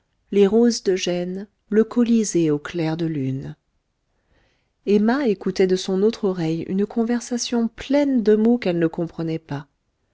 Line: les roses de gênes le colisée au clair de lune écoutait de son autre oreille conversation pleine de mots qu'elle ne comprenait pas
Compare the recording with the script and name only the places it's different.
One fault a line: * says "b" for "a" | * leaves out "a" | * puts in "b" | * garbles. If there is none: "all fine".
* puts in "emma"
* puts in "une"